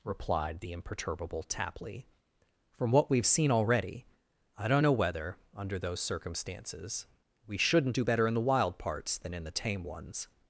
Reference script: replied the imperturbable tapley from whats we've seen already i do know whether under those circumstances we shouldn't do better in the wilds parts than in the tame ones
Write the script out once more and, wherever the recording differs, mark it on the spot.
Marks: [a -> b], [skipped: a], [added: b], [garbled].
replied the imperturbable tapley from [whats -> what] we've seen already i [do -> don't] know whether under those circumstances we shouldn't do better in the [wilds -> wild] parts than in the tame ones